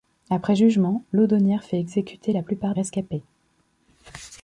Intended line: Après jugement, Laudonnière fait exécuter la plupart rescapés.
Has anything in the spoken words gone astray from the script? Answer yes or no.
no